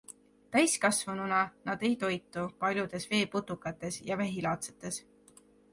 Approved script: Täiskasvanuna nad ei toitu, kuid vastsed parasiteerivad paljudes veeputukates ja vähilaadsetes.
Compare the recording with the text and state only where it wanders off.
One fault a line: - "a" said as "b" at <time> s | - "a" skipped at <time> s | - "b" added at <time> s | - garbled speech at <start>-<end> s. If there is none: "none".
- "kuid vastsed parasiteerivad" skipped at 2.4 s